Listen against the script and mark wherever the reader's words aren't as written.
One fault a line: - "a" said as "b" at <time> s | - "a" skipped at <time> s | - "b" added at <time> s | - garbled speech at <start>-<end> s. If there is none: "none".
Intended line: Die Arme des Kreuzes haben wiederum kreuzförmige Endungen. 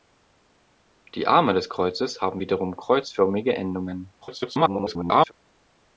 - garbled speech at 4.2-5.3 s